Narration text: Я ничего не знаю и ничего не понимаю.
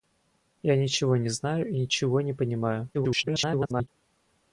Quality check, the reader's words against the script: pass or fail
fail